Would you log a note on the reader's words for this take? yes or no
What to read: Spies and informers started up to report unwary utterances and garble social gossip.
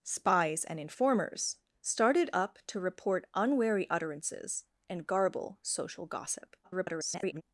yes